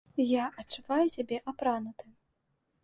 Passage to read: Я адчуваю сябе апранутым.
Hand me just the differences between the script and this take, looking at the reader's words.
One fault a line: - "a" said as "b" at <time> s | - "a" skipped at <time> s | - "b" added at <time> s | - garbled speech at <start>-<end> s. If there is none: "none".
none